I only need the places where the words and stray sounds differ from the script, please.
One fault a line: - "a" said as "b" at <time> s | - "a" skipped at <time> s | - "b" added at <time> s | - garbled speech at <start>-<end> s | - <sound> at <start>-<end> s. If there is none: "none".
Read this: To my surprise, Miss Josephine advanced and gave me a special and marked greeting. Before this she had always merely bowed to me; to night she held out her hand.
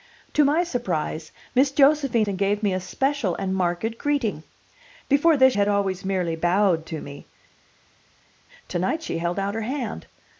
- "advanced" skipped at 2.3 s
- "she" skipped at 5.5 s